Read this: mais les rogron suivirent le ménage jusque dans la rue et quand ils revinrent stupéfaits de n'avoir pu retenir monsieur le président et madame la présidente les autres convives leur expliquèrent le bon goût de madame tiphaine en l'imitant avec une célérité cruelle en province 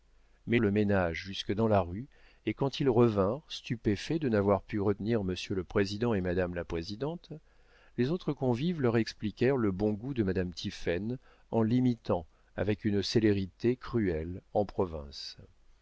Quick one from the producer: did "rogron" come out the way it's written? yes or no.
no